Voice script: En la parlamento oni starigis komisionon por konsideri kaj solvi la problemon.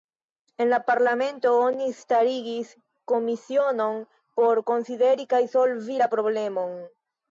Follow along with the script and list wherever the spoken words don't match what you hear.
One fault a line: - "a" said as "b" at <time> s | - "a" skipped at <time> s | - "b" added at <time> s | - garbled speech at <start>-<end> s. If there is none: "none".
none